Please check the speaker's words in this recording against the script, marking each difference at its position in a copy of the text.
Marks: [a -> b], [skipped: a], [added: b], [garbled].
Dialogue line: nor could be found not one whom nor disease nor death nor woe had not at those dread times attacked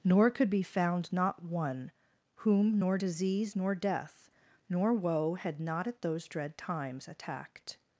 nor could be found not one whom nor disease nor death nor woe had not at those dread times attacked